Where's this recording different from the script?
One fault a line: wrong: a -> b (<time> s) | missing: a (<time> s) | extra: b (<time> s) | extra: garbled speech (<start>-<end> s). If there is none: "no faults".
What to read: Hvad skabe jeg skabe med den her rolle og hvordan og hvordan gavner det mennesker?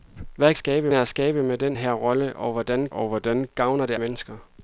no faults